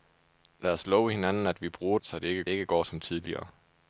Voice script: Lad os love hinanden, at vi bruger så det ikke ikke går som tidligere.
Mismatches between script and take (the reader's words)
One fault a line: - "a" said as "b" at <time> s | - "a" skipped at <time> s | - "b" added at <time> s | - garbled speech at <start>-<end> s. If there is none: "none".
none